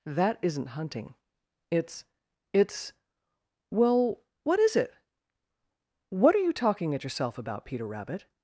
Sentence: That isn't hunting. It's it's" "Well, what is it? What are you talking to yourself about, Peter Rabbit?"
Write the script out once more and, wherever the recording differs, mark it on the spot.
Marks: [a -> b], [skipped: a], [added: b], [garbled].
That isn't hunting. It's it's" "Well, what is it? What are you talking [to -> at] yourself about, Peter Rabbit?"